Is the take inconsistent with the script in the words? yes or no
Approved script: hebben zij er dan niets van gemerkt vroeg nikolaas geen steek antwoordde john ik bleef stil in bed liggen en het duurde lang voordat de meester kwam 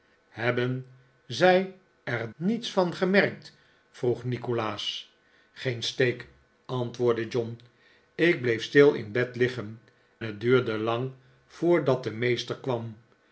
yes